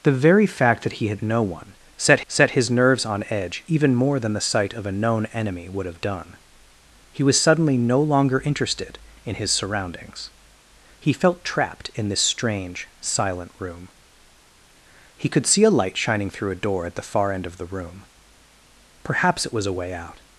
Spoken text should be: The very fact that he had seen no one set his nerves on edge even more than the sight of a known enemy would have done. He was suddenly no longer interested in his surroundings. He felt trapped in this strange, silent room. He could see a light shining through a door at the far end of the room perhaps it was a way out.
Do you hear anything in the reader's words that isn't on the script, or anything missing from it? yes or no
yes